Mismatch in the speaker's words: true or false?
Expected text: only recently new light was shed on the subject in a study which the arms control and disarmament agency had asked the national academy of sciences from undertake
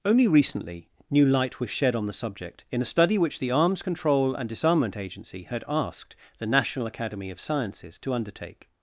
true